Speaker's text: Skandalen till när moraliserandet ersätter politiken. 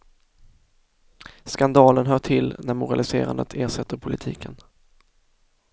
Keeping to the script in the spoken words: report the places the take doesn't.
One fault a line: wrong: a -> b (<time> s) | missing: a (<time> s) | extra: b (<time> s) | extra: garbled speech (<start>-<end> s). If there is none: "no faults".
extra: hör (2.0 s)